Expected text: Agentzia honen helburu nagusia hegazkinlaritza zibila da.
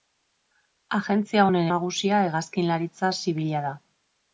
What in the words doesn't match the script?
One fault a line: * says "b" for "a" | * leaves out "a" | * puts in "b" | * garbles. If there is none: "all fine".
* leaves out "helburu"